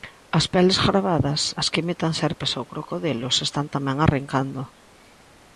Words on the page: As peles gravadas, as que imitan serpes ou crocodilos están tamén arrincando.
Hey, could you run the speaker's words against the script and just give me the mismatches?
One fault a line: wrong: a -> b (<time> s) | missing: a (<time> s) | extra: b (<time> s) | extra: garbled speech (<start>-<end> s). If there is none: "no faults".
no faults